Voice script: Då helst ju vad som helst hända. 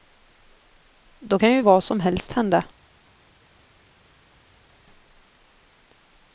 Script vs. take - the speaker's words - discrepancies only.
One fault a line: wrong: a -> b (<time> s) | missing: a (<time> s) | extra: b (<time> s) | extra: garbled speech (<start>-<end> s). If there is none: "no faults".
wrong: helst -> kan (1.4 s)